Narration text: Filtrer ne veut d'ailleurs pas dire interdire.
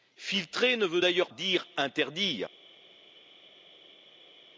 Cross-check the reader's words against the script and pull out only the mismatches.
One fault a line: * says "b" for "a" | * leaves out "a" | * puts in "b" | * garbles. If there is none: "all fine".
* leaves out "pas"